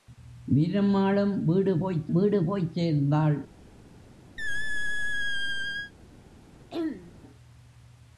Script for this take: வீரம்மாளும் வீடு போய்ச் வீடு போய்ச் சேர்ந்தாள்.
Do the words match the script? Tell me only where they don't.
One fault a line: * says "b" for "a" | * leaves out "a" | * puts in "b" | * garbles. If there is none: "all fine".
all fine